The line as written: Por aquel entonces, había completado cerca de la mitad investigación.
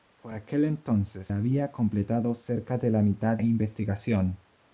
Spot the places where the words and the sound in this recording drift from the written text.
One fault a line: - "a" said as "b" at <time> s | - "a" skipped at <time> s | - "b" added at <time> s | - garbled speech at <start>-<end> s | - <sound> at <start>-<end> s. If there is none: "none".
none